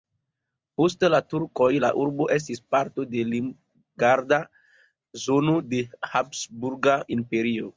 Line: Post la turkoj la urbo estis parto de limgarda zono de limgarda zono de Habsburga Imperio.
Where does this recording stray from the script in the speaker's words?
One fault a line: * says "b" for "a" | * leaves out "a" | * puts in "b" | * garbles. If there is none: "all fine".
* leaves out "limgarda zono de"